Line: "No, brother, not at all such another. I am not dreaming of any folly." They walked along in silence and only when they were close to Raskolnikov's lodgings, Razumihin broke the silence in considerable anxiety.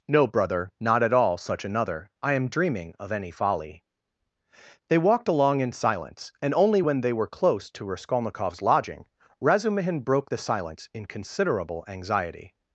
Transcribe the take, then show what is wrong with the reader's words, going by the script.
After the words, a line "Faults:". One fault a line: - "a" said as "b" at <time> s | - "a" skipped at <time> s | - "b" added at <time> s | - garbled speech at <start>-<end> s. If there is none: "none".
"No, brother, not at all such another. I am dreaming of any folly." They walked along in silence and only when they were close to Raskolnikov's lodging, Razumihin broke the silence in considerable anxiety.
Faults:
- "not" skipped at 2.5 s
- "lodgings" said as "lodging" at 8.6 s